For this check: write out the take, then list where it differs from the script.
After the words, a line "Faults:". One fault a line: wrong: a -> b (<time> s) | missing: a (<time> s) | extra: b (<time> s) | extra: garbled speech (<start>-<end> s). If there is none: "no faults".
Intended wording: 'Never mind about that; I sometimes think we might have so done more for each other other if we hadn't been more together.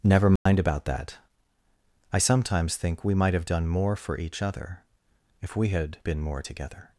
'Never mind about that; I sometimes think we might have done more for each other if we had been more together.
Faults:
missing: so (3.5 s)
missing: other (4.8 s)
wrong: hadn't -> had (5.7 s)